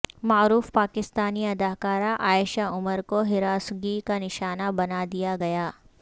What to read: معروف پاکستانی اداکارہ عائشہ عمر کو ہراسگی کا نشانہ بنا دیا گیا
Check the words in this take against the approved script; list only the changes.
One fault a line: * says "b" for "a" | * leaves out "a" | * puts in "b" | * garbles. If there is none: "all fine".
all fine